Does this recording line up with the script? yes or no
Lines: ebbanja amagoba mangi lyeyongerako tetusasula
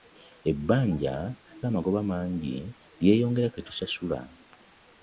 yes